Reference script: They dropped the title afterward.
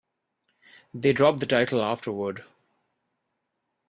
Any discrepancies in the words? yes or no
no